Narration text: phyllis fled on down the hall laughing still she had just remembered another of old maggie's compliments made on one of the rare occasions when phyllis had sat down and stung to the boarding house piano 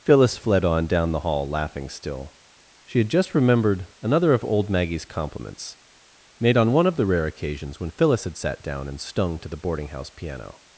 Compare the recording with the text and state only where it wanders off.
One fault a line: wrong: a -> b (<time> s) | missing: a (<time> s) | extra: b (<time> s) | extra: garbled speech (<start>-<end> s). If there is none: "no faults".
no faults